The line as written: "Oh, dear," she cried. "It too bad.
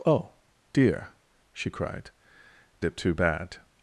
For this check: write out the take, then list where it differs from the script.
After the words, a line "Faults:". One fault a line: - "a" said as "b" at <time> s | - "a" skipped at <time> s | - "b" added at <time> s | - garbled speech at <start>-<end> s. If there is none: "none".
"Oh, dear," she cried. "It too bad.
Faults:
none